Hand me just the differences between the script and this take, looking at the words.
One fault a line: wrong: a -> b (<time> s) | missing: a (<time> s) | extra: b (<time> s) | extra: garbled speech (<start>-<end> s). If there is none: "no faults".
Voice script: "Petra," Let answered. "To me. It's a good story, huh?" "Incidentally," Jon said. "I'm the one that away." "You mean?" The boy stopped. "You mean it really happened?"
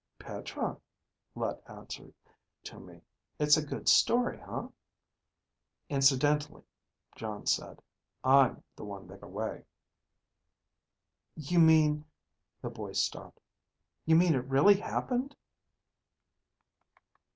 no faults